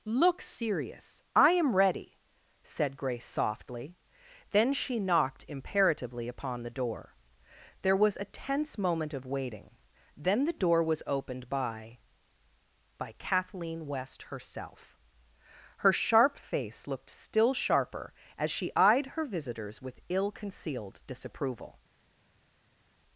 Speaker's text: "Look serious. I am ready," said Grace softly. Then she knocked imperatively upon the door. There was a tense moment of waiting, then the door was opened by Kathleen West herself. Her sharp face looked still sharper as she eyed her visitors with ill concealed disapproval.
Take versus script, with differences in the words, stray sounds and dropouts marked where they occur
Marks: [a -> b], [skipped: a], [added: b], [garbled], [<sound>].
"Look serious. I am ready," said Grace softly. Then she knocked imperatively upon the door. There was a tense moment of waiting, then the door was opened by [added: by] Kathleen West herself. Her sharp face looked still sharper as she eyed her visitors with ill concealed disapproval.